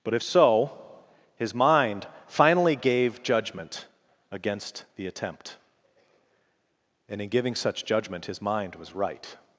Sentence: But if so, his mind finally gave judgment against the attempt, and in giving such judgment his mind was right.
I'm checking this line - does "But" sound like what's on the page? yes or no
yes